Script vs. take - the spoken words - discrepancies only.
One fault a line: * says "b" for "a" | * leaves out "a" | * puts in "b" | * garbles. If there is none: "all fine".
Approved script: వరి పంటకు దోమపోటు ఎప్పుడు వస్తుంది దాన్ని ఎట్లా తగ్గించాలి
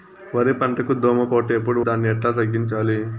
* leaves out "వస్తుంది"